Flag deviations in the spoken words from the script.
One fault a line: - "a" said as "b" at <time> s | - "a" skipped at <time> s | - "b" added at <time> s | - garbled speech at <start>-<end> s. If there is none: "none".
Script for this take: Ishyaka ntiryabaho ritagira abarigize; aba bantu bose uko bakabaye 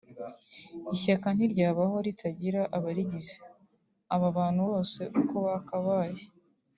none